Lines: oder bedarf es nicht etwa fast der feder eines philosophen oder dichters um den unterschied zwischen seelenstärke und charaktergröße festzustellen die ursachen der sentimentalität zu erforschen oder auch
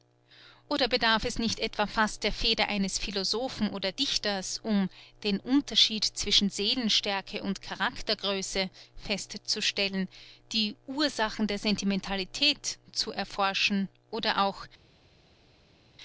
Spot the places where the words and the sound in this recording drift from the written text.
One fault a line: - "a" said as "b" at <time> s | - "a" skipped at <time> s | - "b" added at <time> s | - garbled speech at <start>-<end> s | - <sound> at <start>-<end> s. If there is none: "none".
none